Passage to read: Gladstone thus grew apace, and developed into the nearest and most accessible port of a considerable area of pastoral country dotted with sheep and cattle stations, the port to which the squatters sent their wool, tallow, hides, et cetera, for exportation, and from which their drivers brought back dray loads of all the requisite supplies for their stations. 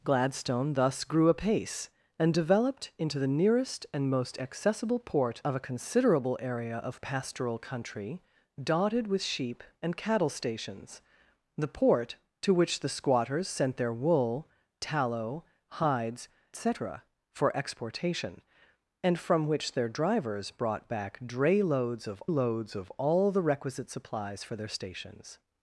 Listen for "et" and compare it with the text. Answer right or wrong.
wrong